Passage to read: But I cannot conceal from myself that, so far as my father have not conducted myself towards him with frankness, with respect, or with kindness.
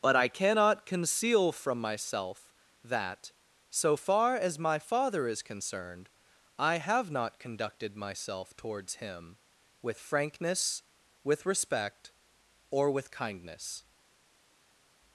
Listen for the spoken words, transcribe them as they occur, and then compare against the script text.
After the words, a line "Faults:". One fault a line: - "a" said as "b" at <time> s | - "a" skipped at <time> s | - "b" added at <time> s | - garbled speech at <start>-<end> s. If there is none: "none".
But I cannot conceal from myself that, so far as my father is concerned, I have not conducted myself towards him with frankness, with respect, or with kindness.
Faults:
- "is concerned I" added at 5.3 s